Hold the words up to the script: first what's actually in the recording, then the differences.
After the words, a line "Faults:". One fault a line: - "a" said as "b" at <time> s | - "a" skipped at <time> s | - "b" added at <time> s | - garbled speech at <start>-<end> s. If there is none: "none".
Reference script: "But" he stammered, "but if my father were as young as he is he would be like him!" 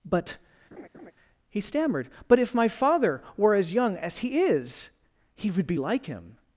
"But" he stammered, "but if my father were as young as he is he would be like him!"
Faults:
none